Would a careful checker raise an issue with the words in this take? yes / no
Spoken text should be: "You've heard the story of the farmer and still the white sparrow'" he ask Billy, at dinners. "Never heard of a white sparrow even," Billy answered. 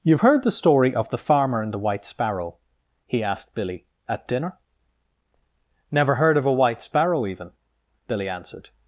yes